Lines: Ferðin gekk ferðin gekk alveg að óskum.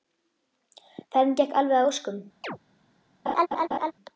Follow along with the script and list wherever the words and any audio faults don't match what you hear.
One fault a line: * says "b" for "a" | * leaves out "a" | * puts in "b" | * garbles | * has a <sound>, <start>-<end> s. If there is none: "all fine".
* leaves out "ferðin gekk"
* has a chirp, 2.4-2.6 s
* has a laugh, 3.3-3.9 s